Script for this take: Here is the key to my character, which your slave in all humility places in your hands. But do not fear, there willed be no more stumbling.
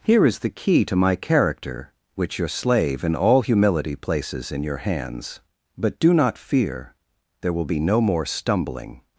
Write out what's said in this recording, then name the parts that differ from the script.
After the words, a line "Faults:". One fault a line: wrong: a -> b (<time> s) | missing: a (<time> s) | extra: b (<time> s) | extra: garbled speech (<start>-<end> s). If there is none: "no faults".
Here is the key to my character, which your slave in all humility places in your hands. But do not fear, there will be no more stumbling.
Faults:
wrong: willed -> will (7.5 s)